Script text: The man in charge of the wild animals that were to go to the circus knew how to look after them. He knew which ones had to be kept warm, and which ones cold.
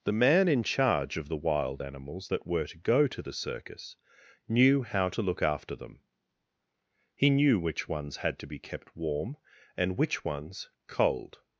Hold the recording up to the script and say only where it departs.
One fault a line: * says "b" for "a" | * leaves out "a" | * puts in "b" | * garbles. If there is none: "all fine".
all fine